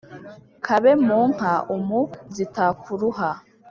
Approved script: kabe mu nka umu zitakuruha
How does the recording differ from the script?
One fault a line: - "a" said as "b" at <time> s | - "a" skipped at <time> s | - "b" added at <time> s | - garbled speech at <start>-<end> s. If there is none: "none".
none